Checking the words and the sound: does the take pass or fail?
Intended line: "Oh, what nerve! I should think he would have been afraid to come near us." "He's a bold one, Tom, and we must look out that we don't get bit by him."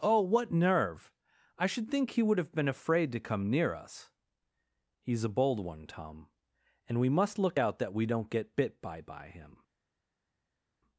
fail